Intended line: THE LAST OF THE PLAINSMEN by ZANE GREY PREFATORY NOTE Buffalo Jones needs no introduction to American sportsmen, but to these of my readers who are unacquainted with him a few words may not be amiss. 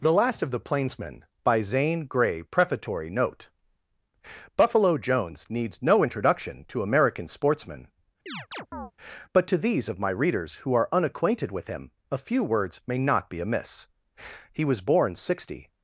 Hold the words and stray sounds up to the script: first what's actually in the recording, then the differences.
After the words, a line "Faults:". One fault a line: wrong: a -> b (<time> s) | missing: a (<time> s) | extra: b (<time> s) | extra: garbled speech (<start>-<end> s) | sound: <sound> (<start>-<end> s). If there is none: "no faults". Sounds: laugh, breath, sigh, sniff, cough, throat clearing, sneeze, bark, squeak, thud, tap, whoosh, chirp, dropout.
THE LAST OF THE PLAINSMEN by ZANE GREY PREFATORY NOTE Buffalo Jones needs no introduction to American sportsmen, but to these of my readers who are unacquainted with him a few words may not be amiss. He was born sixty
Faults:
sound: chirp (8.3-8.9 s)
extra: He was born sixty (14.5 s)